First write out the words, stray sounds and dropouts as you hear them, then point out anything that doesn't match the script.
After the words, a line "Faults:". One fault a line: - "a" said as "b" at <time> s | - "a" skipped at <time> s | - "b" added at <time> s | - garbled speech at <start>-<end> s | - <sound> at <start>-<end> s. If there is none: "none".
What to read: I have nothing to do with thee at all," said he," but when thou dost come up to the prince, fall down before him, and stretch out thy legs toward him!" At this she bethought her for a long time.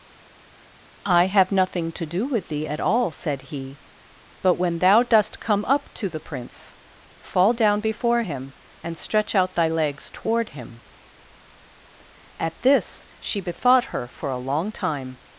I have nothing to do with thee at all," said he," but when thou dost come up to the prince, fall down before him, and stretch out thy legs toward him!" At this she bethought her for a long time.
Faults:
none